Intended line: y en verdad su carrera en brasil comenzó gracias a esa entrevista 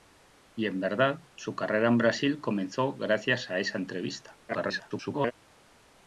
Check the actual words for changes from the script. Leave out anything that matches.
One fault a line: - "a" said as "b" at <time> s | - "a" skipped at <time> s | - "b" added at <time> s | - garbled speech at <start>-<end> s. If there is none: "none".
- garbled speech at 4.5-5.3 s